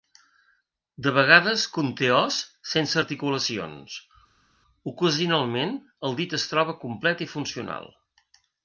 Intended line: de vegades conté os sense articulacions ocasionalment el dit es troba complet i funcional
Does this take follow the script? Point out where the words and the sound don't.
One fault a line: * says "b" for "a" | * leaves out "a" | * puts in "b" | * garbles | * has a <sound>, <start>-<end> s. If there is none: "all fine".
all fine